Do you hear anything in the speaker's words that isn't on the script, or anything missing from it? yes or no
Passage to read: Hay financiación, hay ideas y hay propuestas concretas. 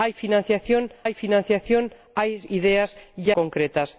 yes